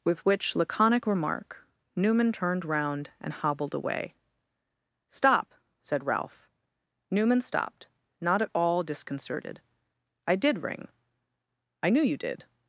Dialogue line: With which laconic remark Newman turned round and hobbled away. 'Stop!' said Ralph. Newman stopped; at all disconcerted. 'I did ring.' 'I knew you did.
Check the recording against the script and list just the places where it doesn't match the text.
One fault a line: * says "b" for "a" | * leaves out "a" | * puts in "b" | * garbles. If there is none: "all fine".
* puts in "not"